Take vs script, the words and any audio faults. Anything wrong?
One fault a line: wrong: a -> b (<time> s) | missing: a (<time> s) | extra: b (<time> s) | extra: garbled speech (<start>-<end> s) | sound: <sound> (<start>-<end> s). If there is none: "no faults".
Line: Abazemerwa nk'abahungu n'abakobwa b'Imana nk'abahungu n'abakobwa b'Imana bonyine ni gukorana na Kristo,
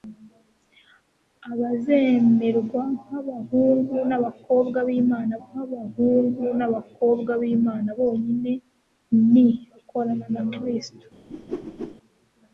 sound: whoosh (11.3-12.0 s)